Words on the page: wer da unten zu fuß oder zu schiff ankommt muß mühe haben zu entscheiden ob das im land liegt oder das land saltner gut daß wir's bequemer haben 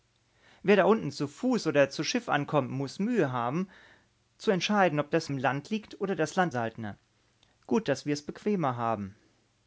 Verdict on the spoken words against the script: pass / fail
pass